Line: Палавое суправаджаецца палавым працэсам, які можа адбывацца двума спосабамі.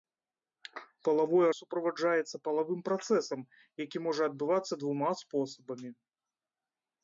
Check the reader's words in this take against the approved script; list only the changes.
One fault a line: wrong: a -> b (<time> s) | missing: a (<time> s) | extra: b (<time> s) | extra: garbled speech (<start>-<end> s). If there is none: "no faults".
no faults